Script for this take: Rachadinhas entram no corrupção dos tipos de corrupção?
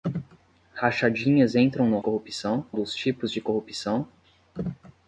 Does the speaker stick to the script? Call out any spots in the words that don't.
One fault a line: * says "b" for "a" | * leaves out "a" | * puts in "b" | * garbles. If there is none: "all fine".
all fine